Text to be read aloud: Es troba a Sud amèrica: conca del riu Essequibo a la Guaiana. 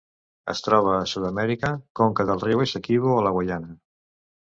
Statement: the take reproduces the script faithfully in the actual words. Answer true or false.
true